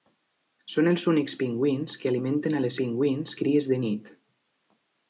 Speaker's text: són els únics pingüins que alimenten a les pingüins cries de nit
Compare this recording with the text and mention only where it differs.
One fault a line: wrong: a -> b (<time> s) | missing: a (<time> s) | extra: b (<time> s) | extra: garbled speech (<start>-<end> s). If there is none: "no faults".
no faults